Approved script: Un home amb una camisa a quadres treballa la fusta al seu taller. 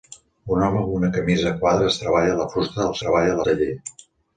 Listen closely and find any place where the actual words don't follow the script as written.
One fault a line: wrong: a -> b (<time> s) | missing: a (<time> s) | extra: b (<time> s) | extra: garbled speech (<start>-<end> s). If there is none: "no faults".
wrong: seu -> treballa (3.0 s)